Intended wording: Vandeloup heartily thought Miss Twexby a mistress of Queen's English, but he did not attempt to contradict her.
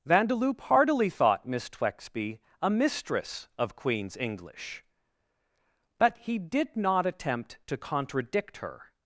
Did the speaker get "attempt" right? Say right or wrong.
right